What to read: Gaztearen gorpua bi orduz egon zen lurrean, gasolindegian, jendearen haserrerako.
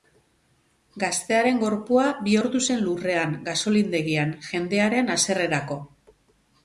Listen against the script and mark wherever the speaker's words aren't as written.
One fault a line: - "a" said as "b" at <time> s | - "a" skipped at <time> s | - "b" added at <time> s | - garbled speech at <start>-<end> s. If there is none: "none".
- "egon" skipped at 2.6 s